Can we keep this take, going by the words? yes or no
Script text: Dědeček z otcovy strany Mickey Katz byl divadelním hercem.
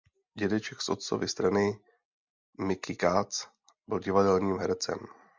yes